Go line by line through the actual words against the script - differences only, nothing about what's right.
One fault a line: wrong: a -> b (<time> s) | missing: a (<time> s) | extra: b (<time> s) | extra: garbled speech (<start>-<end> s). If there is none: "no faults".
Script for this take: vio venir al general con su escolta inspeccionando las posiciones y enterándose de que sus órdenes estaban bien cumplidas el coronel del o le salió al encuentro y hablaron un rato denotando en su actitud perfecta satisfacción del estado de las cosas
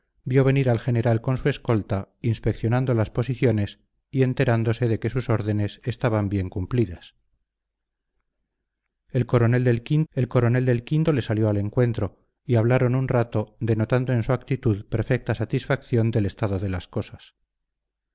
extra: el coronel del (10.1 s)